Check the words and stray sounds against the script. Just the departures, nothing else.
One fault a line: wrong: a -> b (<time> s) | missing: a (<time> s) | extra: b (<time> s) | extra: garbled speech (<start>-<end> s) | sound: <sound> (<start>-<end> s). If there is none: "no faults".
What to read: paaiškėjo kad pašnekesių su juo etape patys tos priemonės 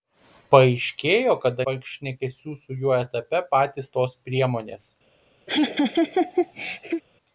sound: laugh (5.5-7.0 s)